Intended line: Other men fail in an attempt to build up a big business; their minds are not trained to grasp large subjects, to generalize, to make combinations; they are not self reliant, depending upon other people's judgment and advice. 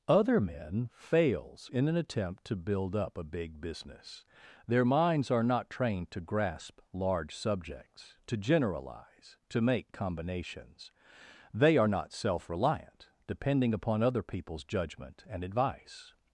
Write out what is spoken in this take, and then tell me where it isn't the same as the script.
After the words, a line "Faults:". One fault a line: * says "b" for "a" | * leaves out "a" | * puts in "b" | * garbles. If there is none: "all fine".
Other men fails in an attempt to build up a big business; their minds are not trained to grasp large subjects, to generalize, to make combinations; they are not self reliant, depending upon other people's judgment and advice.
Faults:
* says "fails" for "fail"